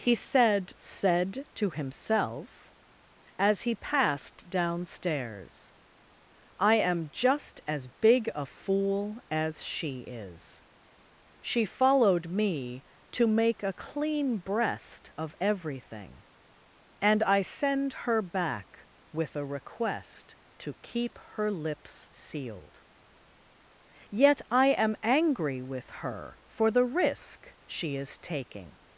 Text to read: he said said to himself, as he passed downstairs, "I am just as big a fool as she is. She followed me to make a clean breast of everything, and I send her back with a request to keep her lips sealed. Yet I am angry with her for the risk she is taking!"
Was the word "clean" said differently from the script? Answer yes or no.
no